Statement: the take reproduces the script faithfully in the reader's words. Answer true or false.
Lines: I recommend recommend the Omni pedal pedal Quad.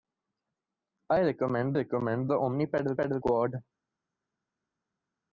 true